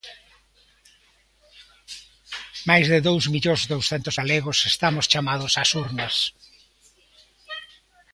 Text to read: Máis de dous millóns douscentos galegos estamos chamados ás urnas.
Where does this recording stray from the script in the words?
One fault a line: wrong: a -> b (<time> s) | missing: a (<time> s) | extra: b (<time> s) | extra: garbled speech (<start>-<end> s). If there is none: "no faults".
no faults